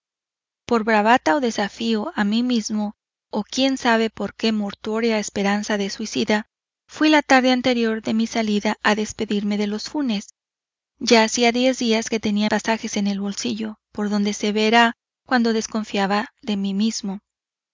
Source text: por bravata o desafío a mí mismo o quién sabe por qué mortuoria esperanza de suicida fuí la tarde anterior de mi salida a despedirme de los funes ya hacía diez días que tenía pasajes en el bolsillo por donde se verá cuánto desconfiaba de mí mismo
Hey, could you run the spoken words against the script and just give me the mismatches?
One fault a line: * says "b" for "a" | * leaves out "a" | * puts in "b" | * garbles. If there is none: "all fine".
all fine